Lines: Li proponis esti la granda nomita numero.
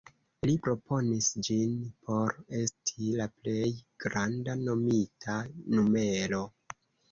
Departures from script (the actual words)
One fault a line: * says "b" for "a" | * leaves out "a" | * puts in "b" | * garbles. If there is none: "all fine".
* puts in "ĝin por"
* puts in "plej"